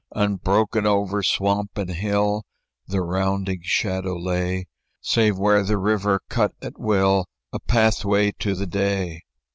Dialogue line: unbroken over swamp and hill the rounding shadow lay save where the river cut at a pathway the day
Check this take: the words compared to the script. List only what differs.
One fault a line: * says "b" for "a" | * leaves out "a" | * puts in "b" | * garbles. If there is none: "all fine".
* puts in "will"
* puts in "to"